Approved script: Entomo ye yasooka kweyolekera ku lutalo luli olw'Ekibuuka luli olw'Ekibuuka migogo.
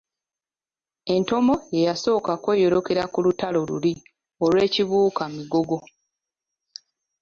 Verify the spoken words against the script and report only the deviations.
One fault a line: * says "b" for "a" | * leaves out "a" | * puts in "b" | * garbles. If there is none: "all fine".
* leaves out "luli olw'Ekibuuka"